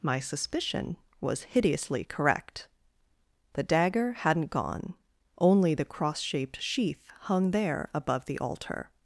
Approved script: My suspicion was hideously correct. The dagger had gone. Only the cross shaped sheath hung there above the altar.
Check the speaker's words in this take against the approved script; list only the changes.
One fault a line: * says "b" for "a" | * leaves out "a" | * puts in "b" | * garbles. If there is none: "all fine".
* says "hadn't" for "had"